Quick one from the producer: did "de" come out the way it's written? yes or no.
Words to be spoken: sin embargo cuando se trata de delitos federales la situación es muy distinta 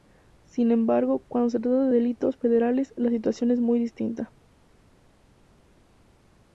yes